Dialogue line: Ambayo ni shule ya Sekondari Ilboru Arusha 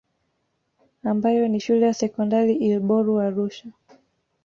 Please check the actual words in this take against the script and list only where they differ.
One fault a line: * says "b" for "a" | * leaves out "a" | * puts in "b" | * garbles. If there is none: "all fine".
all fine